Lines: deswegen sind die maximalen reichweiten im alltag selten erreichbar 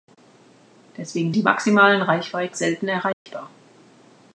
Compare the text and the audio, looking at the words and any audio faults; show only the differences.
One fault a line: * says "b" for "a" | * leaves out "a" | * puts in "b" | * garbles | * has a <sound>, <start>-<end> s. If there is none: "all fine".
* leaves out "sind"
* leaves out "im alltag"
* has a dropout, 3.1-3.3 s